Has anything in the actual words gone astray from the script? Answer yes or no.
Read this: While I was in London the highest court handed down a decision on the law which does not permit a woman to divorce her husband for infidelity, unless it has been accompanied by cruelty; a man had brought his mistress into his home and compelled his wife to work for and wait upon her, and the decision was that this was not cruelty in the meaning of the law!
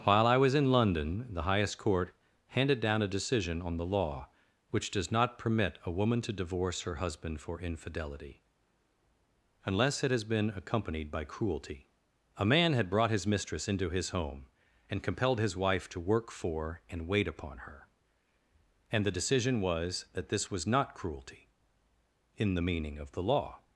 no